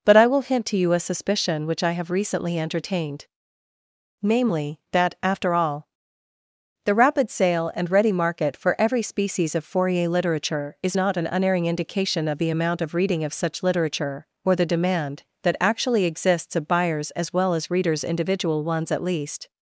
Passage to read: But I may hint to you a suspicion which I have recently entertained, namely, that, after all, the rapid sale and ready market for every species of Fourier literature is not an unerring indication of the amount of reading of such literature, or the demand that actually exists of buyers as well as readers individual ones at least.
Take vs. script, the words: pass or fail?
fail